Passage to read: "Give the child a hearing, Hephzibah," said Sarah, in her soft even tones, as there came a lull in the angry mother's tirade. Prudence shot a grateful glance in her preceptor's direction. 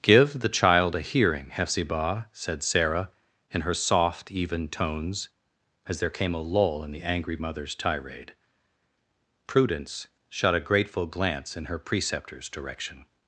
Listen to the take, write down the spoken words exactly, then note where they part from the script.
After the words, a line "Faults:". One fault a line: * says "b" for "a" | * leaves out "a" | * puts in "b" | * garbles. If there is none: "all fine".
"Give the child a hearing, Hephzibah," said Sarah, in her soft even tones, as there came a lull in the angry mother's tirade. Prudence shot a grateful glance in her preceptor's direction.
Faults:
all fine